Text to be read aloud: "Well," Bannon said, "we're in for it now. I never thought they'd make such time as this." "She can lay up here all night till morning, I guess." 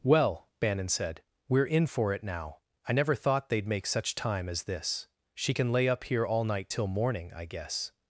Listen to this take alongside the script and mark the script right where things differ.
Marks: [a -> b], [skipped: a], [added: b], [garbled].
"Well," Bannon said, "we're in for it now. I never thought they'd make such time as this." "She can lay up here all night till morning, I guess."